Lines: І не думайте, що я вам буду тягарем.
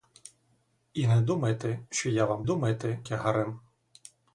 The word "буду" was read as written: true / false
false